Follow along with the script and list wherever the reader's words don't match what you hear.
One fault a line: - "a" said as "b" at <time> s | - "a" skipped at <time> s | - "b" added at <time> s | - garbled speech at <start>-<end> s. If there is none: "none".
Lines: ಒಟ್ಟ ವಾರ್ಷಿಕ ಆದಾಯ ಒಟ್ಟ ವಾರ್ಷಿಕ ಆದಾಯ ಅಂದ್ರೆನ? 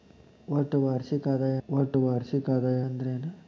none